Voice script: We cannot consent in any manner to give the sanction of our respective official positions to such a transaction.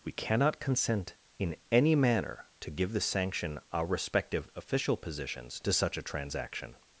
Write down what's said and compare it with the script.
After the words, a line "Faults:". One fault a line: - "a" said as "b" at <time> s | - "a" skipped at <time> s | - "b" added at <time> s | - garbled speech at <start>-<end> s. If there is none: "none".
We cannot consent in any manner to give the sanction our respective official positions to such a transaction.
Faults:
- "of" skipped at 3.6 s